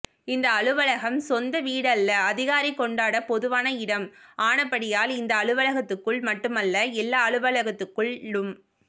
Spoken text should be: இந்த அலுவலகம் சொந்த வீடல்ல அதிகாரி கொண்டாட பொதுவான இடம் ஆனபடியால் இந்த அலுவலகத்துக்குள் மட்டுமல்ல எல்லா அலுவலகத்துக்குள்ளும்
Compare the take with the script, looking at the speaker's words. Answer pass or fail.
pass